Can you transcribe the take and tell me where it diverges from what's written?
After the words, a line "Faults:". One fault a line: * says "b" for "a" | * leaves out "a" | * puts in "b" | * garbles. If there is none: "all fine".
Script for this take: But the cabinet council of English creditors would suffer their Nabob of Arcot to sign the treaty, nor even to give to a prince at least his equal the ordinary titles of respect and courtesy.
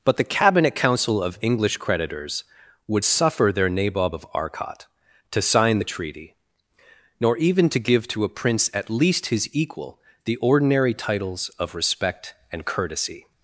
But the cabinet council of English creditors would suffer their Nabob of Arcot to sign the treaty, nor even to give to a prince at least his equal the ordinary titles of respect and courtesy.
Faults:
all fine